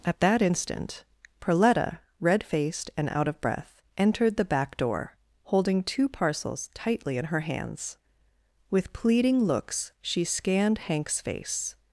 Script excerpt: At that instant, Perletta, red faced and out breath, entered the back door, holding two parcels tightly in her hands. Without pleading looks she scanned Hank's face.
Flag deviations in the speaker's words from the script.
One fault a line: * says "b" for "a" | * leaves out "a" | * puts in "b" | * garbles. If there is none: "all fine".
* puts in "of"
* says "With" for "Without"